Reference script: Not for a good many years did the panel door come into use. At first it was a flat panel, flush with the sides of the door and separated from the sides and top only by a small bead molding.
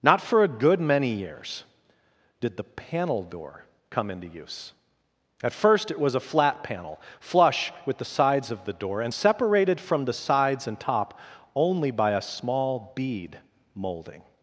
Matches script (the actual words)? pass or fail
pass